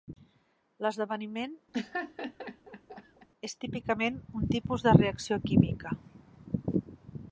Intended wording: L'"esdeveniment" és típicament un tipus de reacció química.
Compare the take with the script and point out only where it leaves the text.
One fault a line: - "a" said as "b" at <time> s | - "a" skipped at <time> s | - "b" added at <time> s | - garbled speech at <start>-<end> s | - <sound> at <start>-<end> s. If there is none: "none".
- laugh at 1.7-3.3 s